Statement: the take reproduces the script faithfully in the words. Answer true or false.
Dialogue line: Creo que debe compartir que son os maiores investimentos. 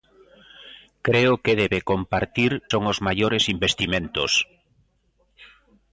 false